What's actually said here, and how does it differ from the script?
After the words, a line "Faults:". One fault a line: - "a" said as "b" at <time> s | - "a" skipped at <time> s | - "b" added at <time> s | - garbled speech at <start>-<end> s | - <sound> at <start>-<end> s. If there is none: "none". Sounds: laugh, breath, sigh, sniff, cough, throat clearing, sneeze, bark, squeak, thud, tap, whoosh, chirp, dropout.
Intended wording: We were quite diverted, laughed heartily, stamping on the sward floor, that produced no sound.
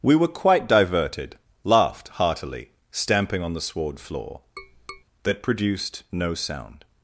We were quite diverted, laughed heartily, stamping on the sward floor, that produced no sound.
Faults:
- tap at 4.6-5.0 s